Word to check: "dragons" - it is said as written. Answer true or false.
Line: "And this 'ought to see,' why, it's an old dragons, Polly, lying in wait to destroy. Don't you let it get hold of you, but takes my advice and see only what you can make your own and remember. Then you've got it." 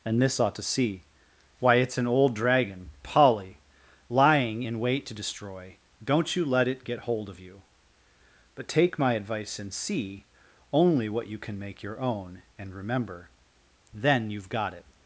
false